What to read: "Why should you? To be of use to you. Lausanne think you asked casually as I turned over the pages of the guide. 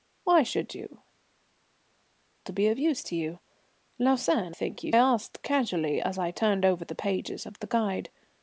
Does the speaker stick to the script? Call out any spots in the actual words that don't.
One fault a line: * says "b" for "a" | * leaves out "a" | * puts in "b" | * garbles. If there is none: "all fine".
all fine